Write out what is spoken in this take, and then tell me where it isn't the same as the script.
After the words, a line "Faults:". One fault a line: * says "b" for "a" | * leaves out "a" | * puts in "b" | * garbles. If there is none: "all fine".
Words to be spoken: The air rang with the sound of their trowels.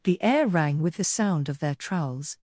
The air rang with the sound of their trowels.
Faults:
all fine